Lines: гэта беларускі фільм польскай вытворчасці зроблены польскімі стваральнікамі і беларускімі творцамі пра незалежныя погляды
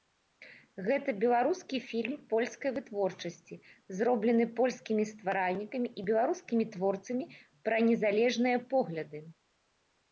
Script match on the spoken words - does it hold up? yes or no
yes